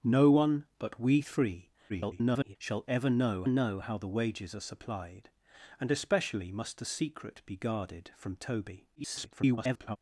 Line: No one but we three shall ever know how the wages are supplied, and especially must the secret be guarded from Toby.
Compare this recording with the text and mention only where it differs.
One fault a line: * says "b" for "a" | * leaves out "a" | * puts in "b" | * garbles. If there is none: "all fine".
* garbles
* puts in "know"
* garbles